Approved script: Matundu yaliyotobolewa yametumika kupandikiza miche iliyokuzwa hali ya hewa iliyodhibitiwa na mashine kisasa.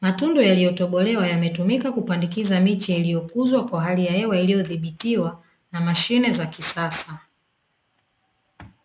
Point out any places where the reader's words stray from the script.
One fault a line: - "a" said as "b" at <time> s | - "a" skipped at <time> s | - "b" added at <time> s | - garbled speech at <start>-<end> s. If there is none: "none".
- "kwa" added at 3.7 s
- "za" added at 6.3 s